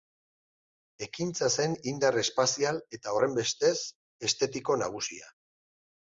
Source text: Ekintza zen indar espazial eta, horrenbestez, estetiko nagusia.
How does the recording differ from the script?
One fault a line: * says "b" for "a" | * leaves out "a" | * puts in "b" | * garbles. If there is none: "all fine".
all fine